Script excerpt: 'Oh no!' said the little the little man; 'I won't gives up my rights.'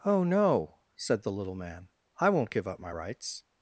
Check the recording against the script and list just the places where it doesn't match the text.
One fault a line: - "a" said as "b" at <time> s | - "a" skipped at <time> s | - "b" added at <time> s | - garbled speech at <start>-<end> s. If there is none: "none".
- "the little" skipped at 1.5 s
- "gives" said as "give" at 2.5 s